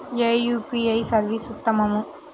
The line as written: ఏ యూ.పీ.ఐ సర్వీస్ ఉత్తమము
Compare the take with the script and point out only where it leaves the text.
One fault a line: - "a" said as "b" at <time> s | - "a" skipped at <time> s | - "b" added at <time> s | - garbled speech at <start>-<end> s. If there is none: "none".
none